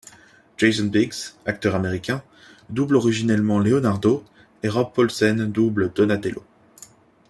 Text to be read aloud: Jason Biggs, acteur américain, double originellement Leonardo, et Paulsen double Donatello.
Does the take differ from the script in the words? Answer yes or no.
yes